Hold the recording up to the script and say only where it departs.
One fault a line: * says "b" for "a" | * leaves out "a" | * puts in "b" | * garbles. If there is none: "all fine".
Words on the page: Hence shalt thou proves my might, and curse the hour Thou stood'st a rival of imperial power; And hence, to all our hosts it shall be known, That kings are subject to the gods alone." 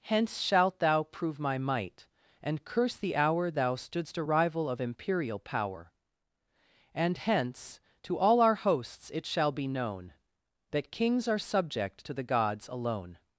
* says "prove" for "proves"